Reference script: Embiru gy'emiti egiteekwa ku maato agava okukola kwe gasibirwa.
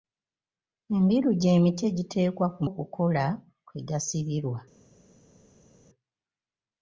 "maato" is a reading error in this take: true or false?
true